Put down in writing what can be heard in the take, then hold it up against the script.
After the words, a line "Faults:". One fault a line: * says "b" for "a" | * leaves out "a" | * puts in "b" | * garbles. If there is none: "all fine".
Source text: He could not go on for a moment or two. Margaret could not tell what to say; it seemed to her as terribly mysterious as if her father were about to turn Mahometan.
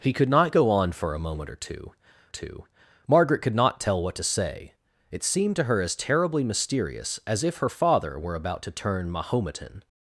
He could not go on for a moment or two two. Margaret could not tell what to say; it seemed to her as terribly mysterious as if her father were about to turn Mahometan.
Faults:
* puts in "two"